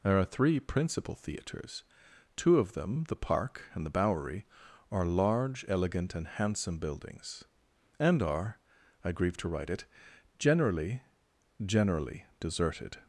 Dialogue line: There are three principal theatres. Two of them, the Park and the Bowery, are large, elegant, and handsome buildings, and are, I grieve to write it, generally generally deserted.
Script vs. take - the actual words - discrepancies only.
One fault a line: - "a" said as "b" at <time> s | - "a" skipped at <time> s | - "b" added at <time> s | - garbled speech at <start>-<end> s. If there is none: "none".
none